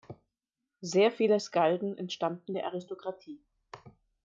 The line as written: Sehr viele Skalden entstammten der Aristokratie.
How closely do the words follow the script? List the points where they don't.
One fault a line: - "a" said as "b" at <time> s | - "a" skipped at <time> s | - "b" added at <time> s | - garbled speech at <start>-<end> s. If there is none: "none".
none